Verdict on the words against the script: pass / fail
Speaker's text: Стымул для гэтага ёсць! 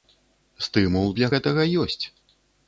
pass